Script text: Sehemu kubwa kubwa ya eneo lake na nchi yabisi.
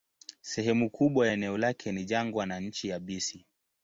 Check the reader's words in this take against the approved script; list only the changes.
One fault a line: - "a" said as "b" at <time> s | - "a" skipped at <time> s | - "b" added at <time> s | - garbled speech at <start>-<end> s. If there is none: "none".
- "kubwa" skipped at 1.3 s
- "ni jangwa" added at 1.9 s